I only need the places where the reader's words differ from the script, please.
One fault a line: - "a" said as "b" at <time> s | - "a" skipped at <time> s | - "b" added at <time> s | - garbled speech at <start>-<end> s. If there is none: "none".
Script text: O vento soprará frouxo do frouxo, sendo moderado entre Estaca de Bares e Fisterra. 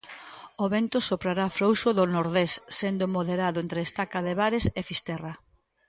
- "frouxo" said as "nordés" at 2.1 s